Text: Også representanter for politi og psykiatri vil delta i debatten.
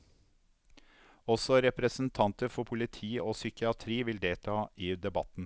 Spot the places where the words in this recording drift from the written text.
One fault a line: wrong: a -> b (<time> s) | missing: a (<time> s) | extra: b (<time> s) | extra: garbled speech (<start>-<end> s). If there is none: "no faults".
no faults